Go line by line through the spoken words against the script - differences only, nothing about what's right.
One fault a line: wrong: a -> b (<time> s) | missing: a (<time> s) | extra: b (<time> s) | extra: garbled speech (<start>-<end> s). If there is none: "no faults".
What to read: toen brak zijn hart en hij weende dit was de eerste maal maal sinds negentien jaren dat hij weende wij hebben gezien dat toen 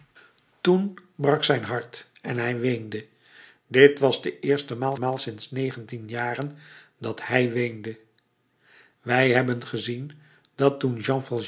no faults